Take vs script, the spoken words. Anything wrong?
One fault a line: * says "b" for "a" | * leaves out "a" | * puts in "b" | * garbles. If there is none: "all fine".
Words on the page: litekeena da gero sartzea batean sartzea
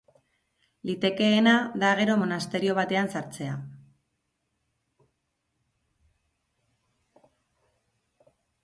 * says "monasterio" for "sartzea"